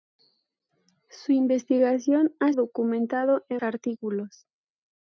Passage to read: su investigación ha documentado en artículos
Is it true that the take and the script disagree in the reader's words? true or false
false